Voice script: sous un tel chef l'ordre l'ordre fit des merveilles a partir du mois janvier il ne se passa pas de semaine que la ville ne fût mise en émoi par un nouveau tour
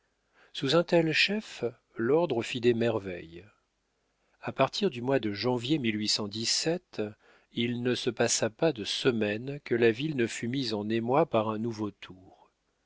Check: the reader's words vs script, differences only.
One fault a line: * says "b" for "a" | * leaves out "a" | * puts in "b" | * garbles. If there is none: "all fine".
* leaves out "l'ordre"
* puts in "de"